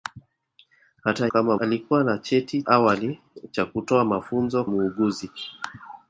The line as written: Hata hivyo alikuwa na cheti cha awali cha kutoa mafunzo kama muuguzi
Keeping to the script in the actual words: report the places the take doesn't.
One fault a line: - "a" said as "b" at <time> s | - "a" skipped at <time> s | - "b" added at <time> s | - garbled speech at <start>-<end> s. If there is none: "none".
- "hivyo" said as "kama" at 1.2 s
- "cha" skipped at 2.6 s
- "kama" skipped at 4.6 s